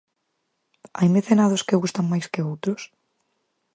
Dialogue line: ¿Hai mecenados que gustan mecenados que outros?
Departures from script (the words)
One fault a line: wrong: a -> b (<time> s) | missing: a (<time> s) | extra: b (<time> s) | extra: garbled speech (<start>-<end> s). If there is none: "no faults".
wrong: mecenados -> máis (2.1 s)